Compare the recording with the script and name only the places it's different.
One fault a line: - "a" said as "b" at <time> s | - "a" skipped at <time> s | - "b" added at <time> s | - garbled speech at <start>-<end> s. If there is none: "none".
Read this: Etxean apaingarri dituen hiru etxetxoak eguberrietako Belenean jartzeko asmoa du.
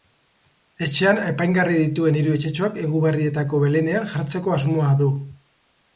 none